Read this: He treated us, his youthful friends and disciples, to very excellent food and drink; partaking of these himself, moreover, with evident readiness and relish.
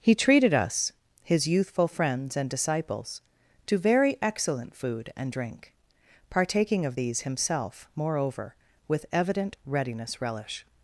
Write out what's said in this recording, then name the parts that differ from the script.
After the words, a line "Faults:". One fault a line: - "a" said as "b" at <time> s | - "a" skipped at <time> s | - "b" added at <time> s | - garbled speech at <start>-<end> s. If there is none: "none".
He treated us, his youthful friends and disciples, to very excellent food and drink; partaking of these himself, moreover, with evident readiness relish.
Faults:
- "and" skipped at 10.2 s